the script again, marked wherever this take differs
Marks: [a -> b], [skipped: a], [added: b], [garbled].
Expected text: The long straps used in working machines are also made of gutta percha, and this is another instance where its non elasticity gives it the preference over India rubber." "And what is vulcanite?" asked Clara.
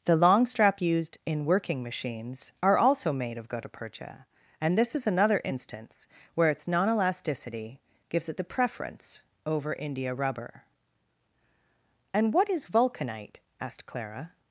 The long [straps -> strap] used in working machines are also made of gutta percha, and this is another instance where its non elasticity gives it the preference over India rubber." "And what is vulcanite?" asked Clara.